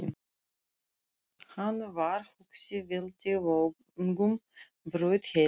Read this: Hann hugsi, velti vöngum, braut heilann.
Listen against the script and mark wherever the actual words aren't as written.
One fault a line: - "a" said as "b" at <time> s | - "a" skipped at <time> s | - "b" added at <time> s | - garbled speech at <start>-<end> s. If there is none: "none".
- "var" added at 1.9 s